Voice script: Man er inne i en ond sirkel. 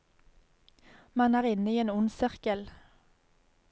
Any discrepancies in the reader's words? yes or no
no